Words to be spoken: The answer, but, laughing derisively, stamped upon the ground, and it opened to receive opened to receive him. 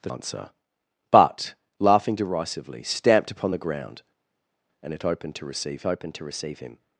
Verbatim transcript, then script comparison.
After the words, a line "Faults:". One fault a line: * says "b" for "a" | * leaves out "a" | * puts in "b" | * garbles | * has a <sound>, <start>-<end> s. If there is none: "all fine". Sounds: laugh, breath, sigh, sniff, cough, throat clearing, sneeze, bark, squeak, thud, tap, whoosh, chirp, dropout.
The answer, but, laughing derisively, stamped upon the ground, and it opened to receive opened to receive him.
Faults:
all fine